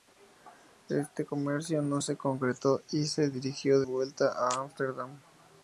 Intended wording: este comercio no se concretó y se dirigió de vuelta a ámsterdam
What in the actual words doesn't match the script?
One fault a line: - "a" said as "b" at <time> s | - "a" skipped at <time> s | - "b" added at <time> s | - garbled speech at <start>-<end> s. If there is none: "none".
- "de" skipped at 3.8 s